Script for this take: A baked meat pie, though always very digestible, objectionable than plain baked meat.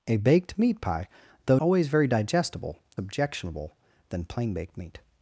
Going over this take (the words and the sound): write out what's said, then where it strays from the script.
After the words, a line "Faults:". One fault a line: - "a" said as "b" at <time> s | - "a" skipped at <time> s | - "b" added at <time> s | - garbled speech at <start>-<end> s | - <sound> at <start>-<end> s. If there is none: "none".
A baked meat pie, though always very digestible, objectionable than plain baked meat.
Faults:
none